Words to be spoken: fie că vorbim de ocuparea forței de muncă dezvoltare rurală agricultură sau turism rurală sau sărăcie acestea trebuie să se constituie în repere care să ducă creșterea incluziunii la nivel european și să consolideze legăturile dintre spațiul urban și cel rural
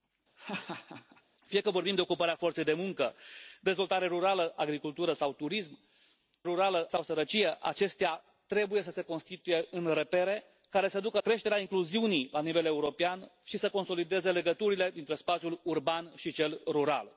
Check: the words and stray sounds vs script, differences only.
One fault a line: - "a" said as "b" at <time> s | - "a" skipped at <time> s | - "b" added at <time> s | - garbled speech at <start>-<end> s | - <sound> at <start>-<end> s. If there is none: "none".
- laugh at 0.4-1.2 s